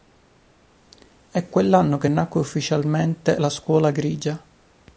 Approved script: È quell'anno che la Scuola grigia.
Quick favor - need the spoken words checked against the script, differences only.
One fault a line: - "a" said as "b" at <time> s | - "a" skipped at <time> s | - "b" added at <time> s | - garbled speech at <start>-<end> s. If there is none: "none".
- "nacque ufficialmente" added at 2.1 s